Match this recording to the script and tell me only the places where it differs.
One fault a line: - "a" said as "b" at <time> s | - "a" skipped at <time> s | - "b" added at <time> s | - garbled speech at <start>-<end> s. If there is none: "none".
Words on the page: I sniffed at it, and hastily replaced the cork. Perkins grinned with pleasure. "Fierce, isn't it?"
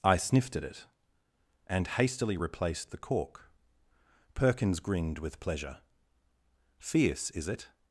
- "isn't" said as "is" at 7.3 s